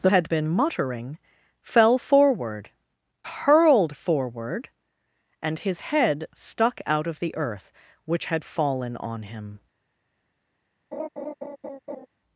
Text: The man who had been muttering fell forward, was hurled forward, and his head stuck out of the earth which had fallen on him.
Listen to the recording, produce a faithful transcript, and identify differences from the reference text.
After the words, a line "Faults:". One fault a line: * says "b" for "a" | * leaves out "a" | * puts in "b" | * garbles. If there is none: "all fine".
The had been muttering fell forward, hurled forward, and his head stuck out of the earth which had fallen on him.
Faults:
* leaves out "man who"
* leaves out "was"